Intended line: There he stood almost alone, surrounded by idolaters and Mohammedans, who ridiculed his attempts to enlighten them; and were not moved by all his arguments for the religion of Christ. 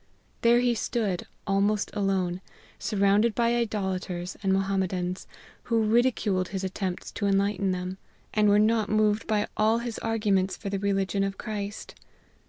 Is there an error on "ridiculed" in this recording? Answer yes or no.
no